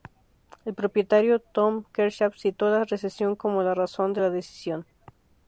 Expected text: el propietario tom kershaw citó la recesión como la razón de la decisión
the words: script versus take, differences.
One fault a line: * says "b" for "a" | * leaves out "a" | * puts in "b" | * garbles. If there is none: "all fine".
all fine